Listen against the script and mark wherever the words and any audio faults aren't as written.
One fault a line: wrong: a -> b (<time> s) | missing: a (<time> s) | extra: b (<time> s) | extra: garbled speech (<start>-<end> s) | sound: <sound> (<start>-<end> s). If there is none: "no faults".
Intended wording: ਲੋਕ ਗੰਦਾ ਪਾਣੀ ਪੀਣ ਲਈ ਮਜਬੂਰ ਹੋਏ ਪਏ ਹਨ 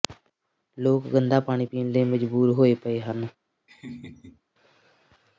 sound: laugh (3.7-4.4 s)